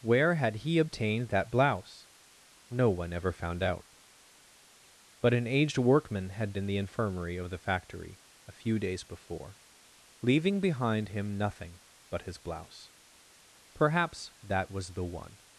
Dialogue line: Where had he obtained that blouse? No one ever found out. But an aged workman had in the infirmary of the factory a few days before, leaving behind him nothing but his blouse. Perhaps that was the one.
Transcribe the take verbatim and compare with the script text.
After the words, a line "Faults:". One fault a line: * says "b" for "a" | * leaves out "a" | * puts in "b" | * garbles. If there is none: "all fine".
Where had he obtained that blouse? No one ever found out. But an aged workman had in the infirmary of the factory a few days before, leaving behind him nothing but his blouse. Perhaps that was the one.
Faults:
all fine